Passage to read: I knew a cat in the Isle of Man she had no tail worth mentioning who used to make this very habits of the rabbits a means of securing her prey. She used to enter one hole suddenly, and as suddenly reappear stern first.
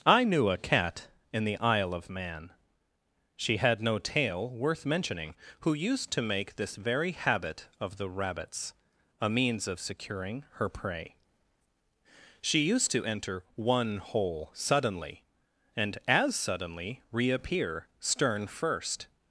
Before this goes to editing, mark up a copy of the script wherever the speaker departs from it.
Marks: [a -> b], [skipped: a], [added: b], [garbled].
I knew a cat in the Isle of Man she had no tail worth mentioning who used to make this very [habits -> habit] of the rabbits a means of securing her prey. She used to enter one hole suddenly, and as suddenly reappear stern first.